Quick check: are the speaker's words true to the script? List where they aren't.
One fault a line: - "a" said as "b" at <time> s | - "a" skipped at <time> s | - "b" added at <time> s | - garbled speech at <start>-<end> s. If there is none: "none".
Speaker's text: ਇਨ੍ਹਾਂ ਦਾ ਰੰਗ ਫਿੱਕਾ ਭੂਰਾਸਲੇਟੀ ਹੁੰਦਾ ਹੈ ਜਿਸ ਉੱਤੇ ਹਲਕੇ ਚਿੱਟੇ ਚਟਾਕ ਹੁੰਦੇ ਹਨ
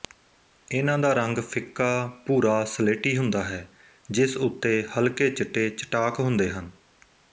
none